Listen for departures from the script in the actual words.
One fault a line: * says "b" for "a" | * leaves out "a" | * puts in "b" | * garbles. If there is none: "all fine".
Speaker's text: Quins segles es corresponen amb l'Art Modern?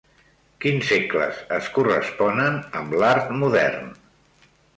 all fine